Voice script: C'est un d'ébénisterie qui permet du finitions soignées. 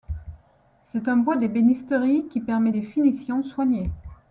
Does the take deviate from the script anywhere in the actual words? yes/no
yes